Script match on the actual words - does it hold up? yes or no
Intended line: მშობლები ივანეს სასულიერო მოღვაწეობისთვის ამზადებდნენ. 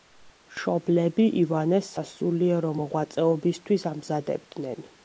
yes